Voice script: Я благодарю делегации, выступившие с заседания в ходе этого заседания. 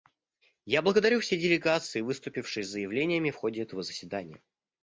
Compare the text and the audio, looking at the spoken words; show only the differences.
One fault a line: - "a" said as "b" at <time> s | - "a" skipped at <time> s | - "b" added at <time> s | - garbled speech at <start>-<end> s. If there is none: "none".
- "все" added at 1.2 s
- "заседания" said as "заявлениями" at 2.7 s